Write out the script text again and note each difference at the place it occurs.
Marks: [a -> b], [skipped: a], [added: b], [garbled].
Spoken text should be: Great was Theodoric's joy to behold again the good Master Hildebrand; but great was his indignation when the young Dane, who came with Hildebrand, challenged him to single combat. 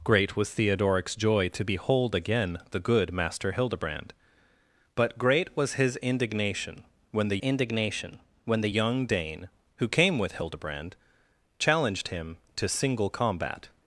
Great was Theodoric's joy to behold again the good Master Hildebrand; but great was his indignation when the [added: indignation when the] young Dane, who came with Hildebrand, challenged him to single combat.